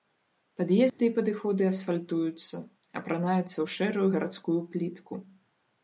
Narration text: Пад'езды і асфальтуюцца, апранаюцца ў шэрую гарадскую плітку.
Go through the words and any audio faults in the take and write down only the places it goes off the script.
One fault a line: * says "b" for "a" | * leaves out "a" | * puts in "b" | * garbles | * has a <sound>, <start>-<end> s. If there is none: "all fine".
* has a dropout, 0.9-1.0 s
* puts in "падыходы"